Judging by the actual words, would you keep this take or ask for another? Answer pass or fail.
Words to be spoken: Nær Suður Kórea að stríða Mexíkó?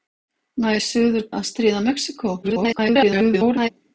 fail